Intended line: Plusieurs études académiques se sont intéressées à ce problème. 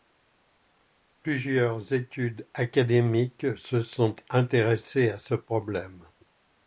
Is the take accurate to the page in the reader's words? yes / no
yes